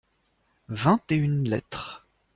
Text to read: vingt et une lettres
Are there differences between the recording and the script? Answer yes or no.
no